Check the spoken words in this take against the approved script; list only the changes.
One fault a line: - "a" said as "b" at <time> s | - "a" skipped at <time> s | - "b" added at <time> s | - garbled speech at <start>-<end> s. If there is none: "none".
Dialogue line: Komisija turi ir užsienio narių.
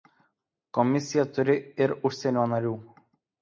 none